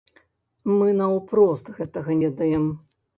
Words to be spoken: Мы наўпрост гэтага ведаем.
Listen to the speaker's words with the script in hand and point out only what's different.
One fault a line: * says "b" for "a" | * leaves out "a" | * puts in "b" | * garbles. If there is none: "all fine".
all fine